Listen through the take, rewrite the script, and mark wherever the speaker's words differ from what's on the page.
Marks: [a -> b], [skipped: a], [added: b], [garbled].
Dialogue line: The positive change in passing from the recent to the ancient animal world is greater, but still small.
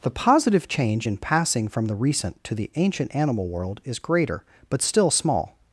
The positive change in passing from the recent to the ancient animal world is greater, but still small.